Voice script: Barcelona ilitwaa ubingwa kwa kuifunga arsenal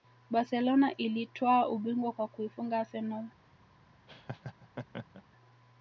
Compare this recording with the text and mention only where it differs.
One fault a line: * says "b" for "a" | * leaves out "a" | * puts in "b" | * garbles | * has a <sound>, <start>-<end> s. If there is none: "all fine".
* has a laugh, 4.1-5.2 s